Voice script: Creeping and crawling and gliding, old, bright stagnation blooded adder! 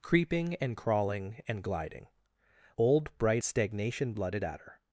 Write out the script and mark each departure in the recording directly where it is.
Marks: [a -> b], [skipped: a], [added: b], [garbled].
Creeping and crawling and gliding, old, bright stagnation blooded adder!